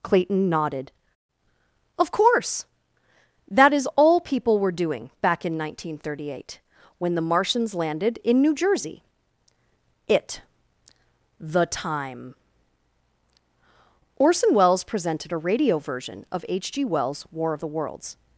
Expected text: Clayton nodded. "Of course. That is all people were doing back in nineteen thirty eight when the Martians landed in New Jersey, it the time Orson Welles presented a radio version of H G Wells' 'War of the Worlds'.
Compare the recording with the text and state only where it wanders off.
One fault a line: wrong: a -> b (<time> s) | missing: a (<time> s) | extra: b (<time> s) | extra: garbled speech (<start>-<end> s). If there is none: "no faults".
no faults